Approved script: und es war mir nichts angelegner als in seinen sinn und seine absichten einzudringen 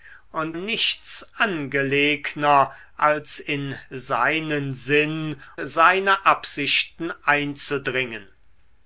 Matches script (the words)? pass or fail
fail